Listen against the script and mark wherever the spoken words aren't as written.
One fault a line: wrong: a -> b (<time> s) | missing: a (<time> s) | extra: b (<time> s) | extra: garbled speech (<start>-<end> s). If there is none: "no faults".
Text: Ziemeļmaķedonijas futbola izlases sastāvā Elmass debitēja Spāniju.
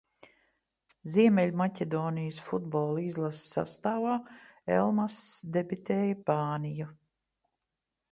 no faults